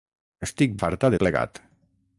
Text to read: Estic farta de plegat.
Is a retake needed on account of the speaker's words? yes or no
no